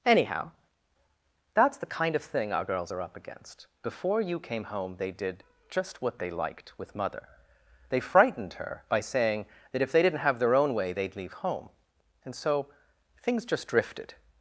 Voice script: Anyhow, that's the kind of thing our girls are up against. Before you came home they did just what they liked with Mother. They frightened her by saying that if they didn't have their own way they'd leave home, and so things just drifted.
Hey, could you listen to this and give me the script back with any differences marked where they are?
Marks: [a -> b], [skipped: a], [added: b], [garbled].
Anyhow, that's the kind of thing our girls are up against. Before you came home they did just what they liked with Mother. They frightened her by saying that if they didn't have their own way they'd leave home, and so things just drifted.